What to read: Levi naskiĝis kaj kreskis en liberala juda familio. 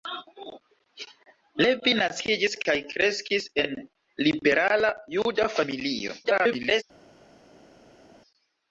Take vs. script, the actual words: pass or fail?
fail